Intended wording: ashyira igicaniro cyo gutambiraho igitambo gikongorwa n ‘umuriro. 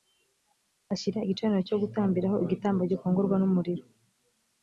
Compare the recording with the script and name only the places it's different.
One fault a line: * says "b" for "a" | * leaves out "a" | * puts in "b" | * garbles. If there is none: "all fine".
all fine